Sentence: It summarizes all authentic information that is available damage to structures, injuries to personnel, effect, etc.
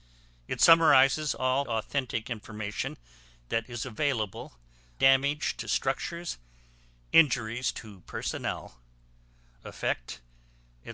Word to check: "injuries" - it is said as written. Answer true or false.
true